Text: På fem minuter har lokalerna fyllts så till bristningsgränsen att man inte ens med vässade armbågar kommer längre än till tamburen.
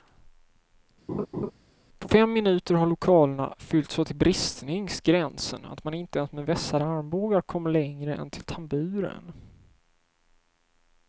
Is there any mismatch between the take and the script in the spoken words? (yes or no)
no